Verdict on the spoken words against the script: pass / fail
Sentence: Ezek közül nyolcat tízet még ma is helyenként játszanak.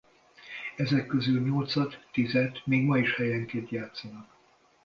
pass